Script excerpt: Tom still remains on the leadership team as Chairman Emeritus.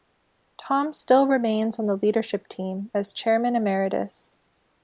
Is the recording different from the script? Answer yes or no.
no